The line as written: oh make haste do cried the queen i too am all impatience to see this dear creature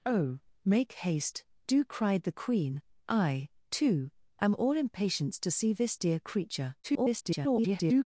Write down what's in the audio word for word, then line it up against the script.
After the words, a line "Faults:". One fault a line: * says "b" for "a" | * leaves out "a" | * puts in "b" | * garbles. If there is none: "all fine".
oh make haste do cried the queen i too am all impatience to see this dear creature [garbled]
Faults:
* garbles